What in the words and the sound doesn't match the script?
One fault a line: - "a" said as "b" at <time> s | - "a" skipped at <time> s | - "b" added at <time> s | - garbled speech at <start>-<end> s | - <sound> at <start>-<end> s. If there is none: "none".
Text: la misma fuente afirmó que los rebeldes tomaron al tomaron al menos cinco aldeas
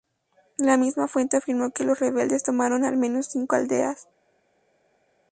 - "tomaron al" skipped at 3.0 s